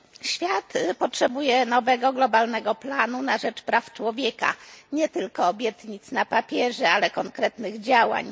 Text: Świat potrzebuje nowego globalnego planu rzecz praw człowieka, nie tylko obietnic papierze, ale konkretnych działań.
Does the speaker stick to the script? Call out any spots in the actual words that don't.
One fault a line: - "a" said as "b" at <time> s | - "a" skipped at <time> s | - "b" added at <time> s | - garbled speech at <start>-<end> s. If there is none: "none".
- "na" added at 3.2 s
- "na" added at 6.1 s